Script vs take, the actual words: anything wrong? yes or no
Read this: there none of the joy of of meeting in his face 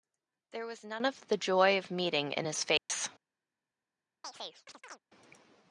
yes